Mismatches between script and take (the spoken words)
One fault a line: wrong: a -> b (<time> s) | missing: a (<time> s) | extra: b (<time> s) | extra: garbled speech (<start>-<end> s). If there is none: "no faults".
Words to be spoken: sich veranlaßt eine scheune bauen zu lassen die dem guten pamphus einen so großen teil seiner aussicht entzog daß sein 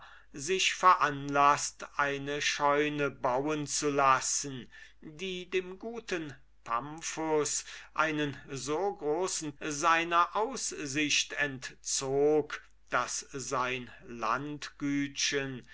missing: teil (9.6 s)